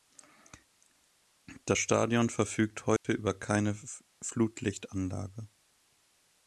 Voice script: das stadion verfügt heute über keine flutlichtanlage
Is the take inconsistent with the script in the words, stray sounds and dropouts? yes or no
yes